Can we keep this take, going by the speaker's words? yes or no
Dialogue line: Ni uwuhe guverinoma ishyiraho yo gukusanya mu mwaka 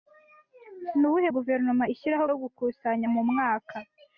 yes